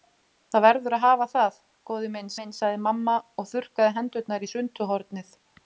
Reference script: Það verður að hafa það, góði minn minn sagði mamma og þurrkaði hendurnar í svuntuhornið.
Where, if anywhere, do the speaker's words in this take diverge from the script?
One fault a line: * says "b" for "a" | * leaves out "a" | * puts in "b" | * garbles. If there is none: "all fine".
all fine